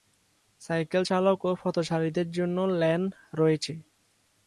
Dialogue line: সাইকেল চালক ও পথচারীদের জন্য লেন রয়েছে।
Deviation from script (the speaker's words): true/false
false